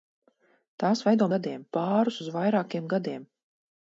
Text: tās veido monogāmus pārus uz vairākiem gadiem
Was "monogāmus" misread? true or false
true